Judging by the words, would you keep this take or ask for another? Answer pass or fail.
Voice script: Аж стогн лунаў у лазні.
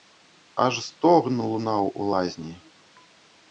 pass